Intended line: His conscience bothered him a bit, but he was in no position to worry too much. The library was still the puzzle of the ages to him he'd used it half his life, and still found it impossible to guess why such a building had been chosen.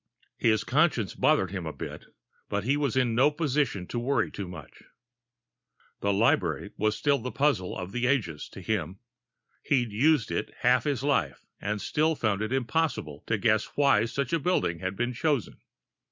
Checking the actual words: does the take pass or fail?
pass